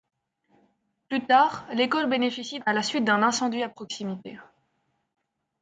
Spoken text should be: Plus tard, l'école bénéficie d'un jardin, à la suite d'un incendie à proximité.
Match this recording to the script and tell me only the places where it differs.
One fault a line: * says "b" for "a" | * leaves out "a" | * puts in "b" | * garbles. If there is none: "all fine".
* leaves out "d'un jardin"